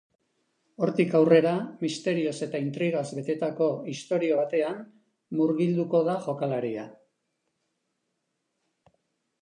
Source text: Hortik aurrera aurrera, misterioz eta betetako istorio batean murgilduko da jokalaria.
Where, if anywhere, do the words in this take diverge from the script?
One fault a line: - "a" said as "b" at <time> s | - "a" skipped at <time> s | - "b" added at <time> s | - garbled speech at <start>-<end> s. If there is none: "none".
- "aurrera" skipped at 1.5 s
- "intrigaz" added at 2.6 s